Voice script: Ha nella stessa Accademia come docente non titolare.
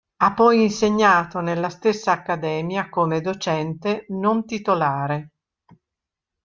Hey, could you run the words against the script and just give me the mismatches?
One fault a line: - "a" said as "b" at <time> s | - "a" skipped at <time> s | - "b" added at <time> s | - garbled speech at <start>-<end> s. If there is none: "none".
- "poi insegnato" added at 0.3 s